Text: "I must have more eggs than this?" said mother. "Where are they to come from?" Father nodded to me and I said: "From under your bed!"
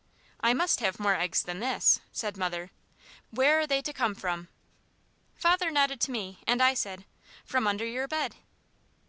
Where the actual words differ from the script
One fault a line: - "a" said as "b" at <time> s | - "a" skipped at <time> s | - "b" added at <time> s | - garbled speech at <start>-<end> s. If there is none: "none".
none